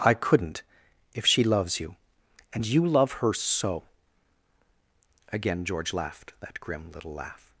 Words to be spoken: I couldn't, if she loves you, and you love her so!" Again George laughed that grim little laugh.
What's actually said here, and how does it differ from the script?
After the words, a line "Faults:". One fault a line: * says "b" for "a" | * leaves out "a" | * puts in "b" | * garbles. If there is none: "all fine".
I couldn't, if she loves you, and you love her so!" Again George laughed that grim little laugh.
Faults:
all fine